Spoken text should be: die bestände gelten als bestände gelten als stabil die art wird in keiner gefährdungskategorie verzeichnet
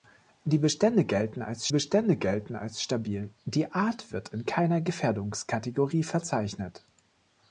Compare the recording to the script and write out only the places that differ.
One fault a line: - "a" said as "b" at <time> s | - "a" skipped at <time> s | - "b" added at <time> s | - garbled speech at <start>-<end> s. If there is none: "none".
none